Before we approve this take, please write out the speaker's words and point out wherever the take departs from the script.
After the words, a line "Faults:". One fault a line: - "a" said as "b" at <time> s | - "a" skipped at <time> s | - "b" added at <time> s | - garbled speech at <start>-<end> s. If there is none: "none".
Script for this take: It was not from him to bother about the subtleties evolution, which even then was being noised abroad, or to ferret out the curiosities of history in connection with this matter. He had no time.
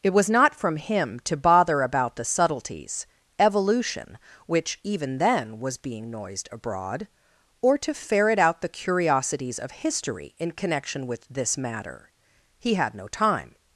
It was not from him to bother about the subtleties evolution, which even then was being noised abroad, or to ferret out the curiosities of history in connection with this matter. He had no time.
Faults:
none